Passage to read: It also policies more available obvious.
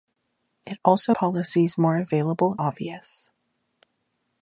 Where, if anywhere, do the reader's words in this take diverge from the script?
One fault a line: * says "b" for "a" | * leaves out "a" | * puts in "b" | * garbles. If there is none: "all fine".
all fine